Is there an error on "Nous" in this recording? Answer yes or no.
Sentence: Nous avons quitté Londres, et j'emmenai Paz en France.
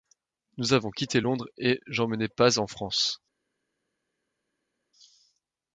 no